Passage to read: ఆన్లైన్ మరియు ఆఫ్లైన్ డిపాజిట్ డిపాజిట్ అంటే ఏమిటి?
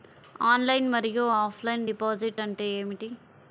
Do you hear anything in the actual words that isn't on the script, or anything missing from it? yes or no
yes